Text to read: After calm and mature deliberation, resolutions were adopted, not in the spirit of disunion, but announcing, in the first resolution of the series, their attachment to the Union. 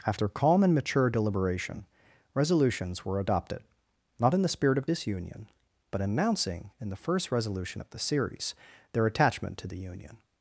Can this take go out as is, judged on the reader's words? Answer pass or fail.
pass